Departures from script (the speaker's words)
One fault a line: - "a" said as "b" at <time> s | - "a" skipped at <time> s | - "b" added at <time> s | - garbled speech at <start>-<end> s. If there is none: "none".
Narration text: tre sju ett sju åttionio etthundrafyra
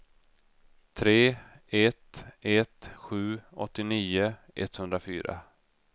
- "sju" said as "ett" at 1.7 s